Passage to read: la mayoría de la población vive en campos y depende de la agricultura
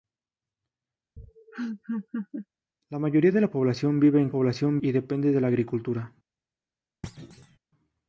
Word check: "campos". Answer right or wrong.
wrong